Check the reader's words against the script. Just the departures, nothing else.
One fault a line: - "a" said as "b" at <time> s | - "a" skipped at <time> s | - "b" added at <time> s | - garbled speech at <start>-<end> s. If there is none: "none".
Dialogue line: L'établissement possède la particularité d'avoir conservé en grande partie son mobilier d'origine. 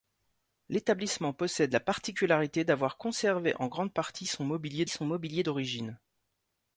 - "son mobilier" added at 4.9 s